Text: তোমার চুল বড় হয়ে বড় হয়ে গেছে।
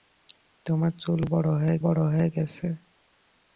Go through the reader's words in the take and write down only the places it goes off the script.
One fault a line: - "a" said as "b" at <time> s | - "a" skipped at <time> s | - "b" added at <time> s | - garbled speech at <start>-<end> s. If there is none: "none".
none